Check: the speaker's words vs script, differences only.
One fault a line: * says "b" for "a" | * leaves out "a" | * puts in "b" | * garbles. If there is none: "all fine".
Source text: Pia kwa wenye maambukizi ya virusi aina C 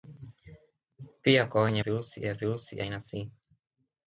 * says "virusi" for "maambukizi"